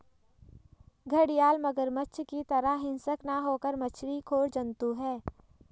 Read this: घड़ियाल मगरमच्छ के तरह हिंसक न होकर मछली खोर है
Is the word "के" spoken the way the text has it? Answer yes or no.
no